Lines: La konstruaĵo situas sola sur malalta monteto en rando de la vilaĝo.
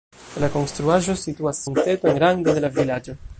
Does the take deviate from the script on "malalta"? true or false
true